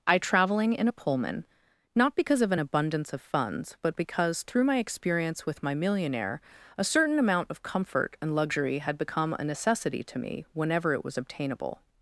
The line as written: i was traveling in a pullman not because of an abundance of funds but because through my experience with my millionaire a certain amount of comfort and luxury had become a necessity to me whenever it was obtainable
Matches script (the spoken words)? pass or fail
fail